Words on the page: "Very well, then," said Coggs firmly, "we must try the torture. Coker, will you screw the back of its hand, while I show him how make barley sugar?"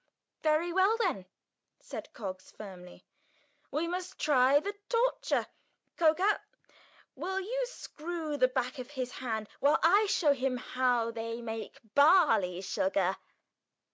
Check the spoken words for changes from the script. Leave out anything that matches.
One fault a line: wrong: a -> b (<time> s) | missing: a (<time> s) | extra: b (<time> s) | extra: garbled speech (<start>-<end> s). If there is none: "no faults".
wrong: its -> his (8.9 s)
extra: they (11.1 s)